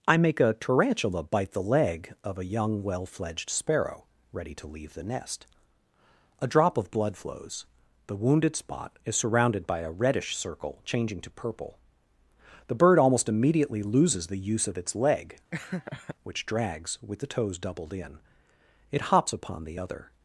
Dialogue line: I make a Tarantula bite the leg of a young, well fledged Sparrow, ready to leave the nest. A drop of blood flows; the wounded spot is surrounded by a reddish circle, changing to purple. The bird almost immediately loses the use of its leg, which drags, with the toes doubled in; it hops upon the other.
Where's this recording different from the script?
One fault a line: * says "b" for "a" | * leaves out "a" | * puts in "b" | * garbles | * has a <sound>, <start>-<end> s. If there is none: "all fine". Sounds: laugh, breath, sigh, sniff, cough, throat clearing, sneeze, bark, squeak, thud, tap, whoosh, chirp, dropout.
* has a laugh, 15.5-16.2 s